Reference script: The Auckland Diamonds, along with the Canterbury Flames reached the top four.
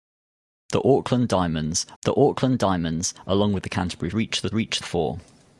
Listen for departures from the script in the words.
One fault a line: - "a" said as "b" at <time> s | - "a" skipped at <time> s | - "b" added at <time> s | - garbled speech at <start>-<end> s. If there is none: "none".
- "the Auckland Diamonds" added at 2.0 s
- "Flames" skipped at 4.1 s
- "top" said as "reached" at 4.5 s